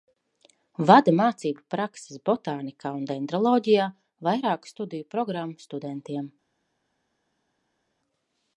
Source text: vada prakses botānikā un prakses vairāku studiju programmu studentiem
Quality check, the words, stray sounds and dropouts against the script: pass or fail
fail